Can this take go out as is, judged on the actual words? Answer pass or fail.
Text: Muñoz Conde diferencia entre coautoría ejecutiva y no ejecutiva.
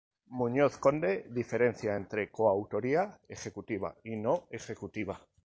pass